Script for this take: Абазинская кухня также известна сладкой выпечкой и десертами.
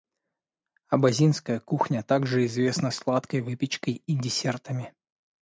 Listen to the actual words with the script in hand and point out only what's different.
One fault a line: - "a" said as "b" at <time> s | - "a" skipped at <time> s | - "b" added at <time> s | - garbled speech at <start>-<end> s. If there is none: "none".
none